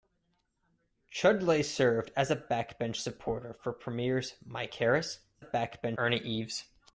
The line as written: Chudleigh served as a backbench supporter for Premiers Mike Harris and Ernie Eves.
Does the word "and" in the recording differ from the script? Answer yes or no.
yes